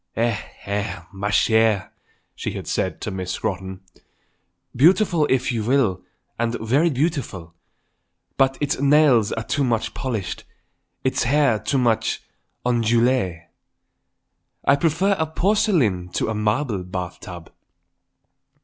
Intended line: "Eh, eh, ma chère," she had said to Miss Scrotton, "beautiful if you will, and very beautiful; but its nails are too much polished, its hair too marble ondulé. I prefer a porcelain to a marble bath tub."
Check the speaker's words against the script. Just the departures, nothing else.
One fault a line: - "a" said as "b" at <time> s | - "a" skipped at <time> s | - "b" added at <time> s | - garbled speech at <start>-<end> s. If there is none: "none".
- "marble" said as "much" at 11.8 s